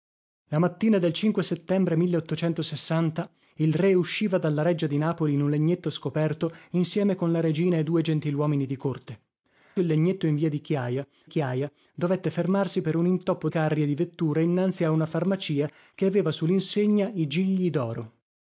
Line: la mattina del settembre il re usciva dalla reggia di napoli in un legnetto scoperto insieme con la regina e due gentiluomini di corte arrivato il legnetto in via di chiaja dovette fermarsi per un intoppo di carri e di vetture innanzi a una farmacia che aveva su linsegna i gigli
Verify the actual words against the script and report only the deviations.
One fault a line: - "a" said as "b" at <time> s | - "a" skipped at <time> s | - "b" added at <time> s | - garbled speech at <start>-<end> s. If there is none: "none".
- "arrivato" skipped at 9.2 s
- "chiaja" added at 11.3 s
- "di" skipped at 13.5 s